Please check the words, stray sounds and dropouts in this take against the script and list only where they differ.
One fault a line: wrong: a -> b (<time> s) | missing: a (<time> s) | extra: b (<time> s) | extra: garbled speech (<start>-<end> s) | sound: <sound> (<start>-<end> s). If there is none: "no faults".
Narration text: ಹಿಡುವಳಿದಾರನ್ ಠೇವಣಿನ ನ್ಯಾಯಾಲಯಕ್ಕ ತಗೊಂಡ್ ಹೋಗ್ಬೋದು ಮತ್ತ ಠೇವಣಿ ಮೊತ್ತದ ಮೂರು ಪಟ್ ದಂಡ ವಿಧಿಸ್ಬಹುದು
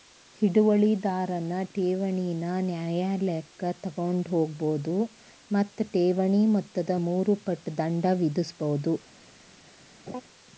sound: laugh (10.1-10.2 s)